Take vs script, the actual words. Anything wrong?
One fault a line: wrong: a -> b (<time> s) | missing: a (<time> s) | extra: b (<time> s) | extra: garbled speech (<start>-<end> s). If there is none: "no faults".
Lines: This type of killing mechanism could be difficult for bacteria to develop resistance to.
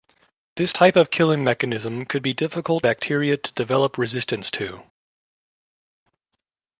missing: for (2.9 s)